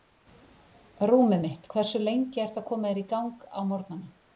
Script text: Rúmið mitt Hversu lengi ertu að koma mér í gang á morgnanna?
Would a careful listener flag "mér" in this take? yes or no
yes